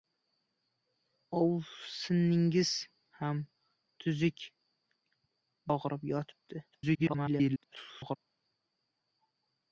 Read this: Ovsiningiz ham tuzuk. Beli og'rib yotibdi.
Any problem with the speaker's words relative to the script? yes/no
yes